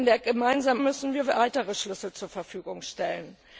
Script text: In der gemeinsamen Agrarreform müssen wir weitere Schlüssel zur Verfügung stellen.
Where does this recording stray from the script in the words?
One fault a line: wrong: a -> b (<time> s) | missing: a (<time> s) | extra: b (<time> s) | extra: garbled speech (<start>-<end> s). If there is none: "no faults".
missing: Agrarreform (0.8 s)